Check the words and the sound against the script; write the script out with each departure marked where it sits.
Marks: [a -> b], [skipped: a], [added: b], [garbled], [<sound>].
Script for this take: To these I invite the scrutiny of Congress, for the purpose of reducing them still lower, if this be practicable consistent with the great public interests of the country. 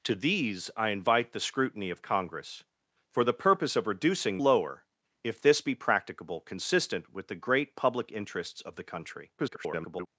To these I invite the scrutiny of Congress, for the purpose of reducing [skipped: them still] lower, if this be practicable consistent with the great public interests of the country. [garbled]